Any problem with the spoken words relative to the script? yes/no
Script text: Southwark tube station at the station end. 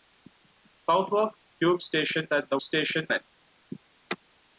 no